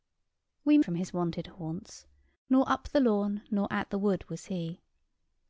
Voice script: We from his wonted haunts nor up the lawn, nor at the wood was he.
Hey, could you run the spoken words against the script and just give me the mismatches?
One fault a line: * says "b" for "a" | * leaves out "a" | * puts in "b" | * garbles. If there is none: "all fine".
all fine